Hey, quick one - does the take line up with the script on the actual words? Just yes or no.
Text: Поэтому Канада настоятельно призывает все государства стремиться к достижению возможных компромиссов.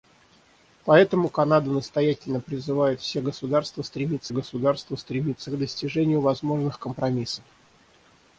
no